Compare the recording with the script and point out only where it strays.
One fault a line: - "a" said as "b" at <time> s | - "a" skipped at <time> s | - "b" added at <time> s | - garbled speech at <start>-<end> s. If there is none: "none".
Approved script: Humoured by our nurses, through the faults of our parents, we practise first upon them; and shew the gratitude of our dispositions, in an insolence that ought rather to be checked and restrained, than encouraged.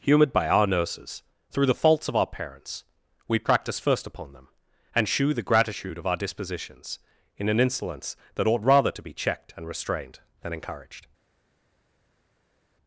none